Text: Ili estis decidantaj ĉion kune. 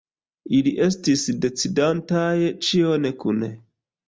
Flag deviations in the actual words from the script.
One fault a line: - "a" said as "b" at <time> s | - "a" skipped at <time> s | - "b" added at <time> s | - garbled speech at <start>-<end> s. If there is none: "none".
none